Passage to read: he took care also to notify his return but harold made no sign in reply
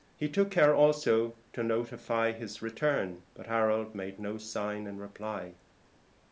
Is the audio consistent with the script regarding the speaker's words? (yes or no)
yes